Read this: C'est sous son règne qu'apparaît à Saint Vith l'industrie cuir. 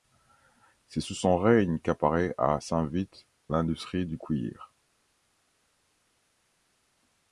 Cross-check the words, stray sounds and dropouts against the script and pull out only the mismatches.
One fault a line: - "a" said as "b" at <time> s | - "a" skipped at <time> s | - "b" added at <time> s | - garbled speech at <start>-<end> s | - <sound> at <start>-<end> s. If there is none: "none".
- "du" added at 4.1 s